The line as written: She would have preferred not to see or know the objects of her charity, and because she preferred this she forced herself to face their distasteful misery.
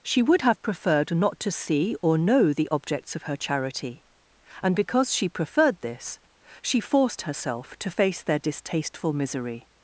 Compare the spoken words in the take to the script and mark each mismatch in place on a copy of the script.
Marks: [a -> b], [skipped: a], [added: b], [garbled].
She would have preferred not to see or know the objects of her charity, and because she preferred this she forced herself to face their distasteful misery.